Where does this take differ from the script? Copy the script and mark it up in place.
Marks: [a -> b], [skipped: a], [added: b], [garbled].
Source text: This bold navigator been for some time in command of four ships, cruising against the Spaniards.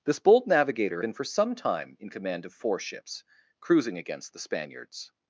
This bold navigator been for some time in command of four ships, cruising against the Spaniards.